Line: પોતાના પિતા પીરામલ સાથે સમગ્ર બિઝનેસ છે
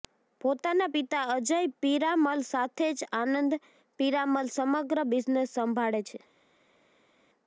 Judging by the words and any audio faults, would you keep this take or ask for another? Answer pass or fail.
fail